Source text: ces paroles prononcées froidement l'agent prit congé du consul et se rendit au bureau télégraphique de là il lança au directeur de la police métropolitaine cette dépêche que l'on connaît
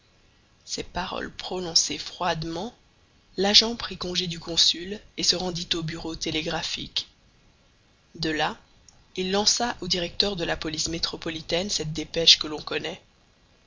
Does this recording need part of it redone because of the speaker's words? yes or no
no